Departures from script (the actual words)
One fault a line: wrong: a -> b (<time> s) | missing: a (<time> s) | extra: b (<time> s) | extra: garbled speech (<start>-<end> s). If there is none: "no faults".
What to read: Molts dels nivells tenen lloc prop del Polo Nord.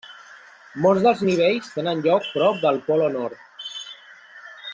no faults